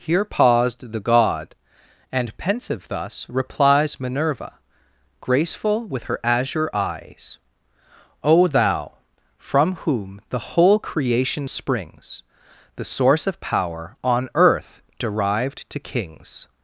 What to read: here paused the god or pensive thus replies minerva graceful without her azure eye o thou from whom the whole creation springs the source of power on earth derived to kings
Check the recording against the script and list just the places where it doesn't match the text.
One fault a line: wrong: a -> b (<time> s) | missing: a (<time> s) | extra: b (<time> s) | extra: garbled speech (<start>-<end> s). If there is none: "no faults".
wrong: or -> and (2.1 s)
wrong: without -> with (5.9 s)
wrong: eye -> eyes (6.7 s)